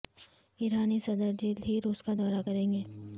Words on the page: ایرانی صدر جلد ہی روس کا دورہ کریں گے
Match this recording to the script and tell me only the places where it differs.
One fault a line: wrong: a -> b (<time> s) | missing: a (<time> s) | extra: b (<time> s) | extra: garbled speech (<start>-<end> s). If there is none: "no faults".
no faults